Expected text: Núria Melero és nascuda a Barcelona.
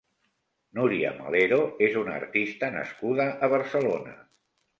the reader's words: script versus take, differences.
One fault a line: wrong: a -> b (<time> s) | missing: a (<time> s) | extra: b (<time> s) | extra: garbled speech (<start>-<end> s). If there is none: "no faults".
extra: una artista (2.0 s)